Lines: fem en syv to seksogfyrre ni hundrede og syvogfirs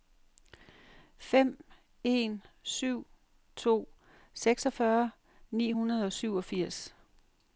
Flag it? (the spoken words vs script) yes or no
no